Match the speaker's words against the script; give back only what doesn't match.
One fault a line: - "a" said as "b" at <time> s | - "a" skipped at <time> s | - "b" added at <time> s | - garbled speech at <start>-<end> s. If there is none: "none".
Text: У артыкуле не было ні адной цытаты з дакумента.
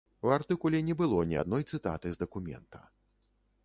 none